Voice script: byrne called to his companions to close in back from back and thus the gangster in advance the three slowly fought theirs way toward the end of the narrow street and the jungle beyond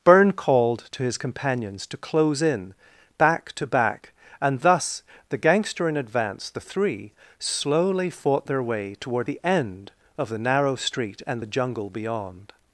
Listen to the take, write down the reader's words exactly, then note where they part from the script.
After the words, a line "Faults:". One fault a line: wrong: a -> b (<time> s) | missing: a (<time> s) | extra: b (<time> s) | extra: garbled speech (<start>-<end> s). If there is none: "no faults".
byrne called to his companions to close in back to back and thus the gangster in advance the three slowly fought their way toward the end of the narrow street and the jungle beyond
Faults:
wrong: from -> to (3.5 s)
wrong: theirs -> their (8.5 s)